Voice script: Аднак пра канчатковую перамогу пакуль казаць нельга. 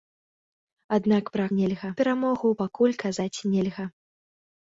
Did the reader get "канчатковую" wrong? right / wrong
wrong